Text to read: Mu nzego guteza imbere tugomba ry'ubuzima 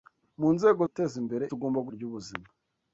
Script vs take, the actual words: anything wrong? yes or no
no